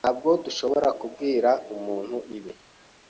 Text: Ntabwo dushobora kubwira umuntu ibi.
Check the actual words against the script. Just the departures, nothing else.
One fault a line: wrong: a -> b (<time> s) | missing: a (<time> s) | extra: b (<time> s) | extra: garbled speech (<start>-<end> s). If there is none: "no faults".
no faults